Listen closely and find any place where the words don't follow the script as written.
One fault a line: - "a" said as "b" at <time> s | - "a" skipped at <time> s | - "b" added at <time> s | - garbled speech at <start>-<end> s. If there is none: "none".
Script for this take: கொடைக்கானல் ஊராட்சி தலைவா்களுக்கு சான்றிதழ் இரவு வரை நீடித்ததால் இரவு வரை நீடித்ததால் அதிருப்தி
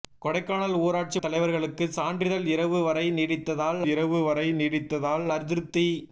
none